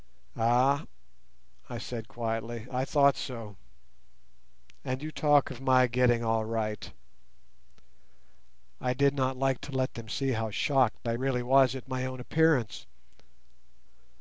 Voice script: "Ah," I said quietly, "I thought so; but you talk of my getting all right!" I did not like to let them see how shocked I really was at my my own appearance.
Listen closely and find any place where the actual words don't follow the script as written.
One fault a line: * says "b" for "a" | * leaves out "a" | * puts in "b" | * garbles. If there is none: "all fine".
* says "and" for "but"
* leaves out "my"